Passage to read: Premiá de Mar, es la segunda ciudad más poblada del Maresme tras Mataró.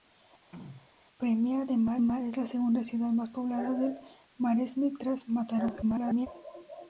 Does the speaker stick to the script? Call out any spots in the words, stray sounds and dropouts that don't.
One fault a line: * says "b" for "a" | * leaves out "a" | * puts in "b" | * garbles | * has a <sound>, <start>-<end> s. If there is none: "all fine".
* has a throat clearing, 0.5-0.9 s
* puts in "Mar"
* garbles